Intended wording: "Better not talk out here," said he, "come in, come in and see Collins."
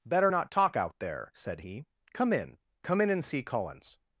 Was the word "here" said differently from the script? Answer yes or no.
yes